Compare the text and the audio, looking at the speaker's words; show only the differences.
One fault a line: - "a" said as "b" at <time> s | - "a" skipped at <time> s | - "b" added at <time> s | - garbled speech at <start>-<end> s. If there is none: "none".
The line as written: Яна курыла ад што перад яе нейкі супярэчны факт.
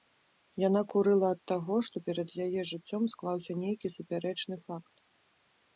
- "таго" added at 1.5 s
- "жыццём склаўся" added at 2.7 s